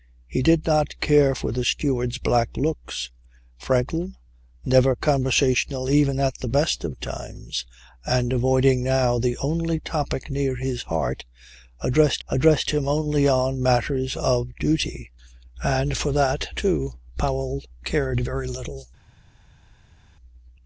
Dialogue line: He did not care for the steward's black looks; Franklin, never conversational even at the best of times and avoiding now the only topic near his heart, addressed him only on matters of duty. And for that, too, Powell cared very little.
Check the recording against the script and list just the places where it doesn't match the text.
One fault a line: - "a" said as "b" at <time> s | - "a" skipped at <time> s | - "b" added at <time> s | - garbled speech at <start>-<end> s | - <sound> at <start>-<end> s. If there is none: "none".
- "addressed" added at 12.3 s